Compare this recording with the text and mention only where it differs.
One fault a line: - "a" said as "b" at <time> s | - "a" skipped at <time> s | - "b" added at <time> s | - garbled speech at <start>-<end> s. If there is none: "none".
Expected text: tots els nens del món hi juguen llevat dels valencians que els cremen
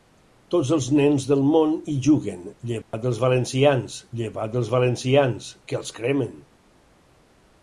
- "llevat dels valencians" added at 4.2 s